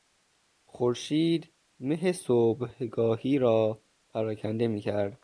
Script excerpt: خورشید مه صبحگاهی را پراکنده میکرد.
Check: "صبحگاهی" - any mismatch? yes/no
no